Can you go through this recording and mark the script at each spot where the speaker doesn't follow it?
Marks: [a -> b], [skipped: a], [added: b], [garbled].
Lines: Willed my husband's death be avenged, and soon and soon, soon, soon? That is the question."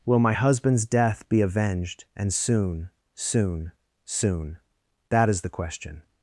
[Willed -> Will] my husband's death be avenged, and soon [skipped: and soon,] soon, soon? That is the question."